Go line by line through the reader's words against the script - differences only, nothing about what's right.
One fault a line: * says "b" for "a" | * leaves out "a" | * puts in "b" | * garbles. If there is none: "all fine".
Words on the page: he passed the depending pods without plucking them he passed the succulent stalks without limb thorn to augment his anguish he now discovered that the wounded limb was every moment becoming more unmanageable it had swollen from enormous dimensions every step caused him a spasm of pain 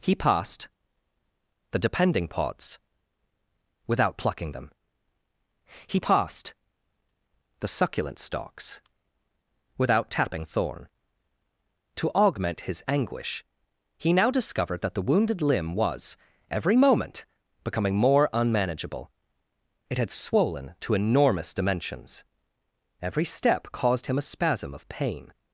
* says "tapping" for "limb"
* says "to" for "from"